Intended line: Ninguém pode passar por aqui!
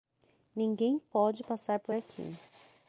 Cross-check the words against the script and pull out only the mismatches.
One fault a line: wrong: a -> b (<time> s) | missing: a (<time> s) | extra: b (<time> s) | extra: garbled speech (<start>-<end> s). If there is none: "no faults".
no faults